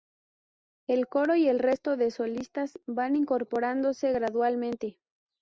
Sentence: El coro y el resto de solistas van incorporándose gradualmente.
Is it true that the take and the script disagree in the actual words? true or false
false